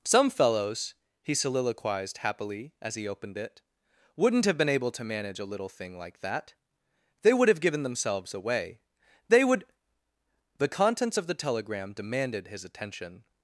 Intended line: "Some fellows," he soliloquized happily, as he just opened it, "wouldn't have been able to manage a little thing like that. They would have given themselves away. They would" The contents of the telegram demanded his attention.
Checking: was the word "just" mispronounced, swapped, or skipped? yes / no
yes